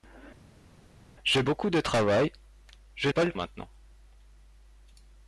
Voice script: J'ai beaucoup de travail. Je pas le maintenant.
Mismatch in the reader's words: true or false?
false